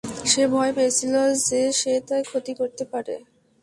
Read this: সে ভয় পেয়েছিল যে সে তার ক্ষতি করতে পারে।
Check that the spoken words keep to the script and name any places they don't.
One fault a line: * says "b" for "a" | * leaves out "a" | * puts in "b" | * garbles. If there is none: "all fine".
all fine